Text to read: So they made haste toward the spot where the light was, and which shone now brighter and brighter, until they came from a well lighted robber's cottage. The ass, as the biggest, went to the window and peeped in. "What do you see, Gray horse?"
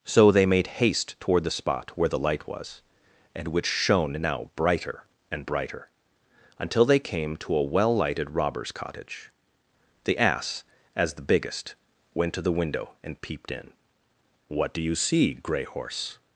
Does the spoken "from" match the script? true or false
false